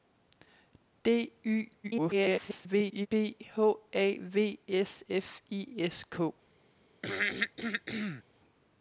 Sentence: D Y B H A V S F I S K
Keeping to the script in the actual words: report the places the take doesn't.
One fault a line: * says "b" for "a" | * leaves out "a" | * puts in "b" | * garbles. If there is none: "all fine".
* garbles